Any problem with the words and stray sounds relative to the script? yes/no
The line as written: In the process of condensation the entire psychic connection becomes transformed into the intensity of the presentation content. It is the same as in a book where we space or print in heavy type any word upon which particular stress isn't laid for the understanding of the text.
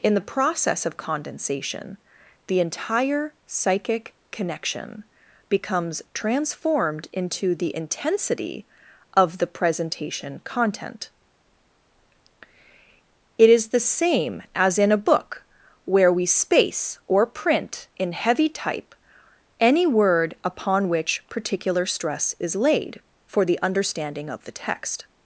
yes